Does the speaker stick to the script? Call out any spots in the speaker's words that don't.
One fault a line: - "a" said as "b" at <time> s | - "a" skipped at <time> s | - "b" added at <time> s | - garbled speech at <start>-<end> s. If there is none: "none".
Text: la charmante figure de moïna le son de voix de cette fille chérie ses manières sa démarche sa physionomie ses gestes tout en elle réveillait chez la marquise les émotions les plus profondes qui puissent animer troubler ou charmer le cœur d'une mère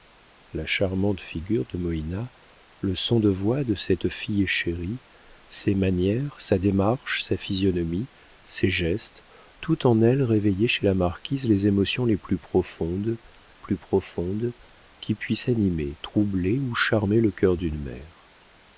- "plus profondes" added at 13.6 s